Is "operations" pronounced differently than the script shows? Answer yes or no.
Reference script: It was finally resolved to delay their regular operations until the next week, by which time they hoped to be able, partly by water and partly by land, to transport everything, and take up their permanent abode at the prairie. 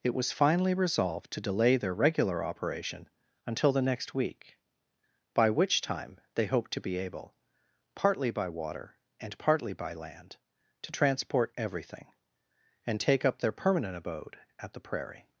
yes